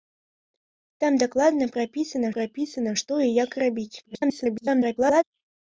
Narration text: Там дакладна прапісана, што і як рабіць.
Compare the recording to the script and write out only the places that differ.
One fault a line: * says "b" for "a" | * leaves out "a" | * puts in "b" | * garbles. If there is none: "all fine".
* puts in "прапісана"
* garbles